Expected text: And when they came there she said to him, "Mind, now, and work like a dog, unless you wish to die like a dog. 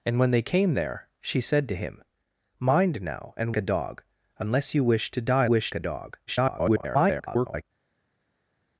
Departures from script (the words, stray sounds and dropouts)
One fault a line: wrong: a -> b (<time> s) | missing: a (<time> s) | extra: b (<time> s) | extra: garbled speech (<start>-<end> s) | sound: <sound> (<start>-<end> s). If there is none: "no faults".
missing: work like (3.5 s)
wrong: like -> wish (5.4 s)
extra: garbled speech (6.3-7.6 s)